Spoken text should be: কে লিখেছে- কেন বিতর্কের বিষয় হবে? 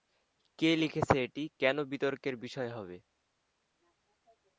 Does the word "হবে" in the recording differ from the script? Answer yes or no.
no